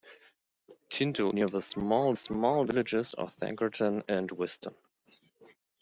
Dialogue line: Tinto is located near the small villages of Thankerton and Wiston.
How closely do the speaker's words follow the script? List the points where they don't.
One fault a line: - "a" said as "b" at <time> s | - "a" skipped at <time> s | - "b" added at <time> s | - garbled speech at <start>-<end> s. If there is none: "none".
- "is located" skipped at 1.3 s
- "small" added at 2.1 s